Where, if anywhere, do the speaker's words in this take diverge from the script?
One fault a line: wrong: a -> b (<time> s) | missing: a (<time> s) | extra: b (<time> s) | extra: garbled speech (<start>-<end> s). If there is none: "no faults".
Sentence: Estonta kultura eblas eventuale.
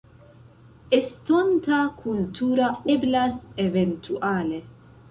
no faults